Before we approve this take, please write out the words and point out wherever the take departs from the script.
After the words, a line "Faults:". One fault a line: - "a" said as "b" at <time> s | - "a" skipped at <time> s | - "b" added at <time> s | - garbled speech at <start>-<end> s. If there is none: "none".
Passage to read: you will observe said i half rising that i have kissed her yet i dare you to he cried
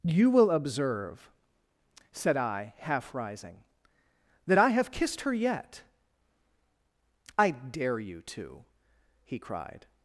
you will observe said i half rising that i have kissed her yet i dare you to he cried
Faults:
none